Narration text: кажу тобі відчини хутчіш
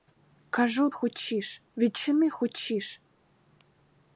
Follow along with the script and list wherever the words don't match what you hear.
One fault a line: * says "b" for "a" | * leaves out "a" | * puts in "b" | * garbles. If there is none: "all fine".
* says "хутчіш" for "тобі"